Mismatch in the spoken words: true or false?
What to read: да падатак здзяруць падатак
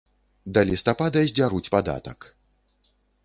true